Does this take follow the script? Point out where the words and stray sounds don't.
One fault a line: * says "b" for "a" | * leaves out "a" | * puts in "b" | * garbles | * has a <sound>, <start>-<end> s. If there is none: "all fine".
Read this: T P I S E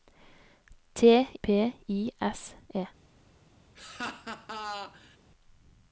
* has a laugh, 3.8-5.2 s